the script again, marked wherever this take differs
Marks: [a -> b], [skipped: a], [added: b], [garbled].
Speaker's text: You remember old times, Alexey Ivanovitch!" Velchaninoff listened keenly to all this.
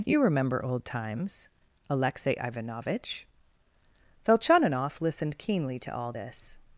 You remember old times, Alexey Ivanovitch!" Velchaninoff listened keenly to all this.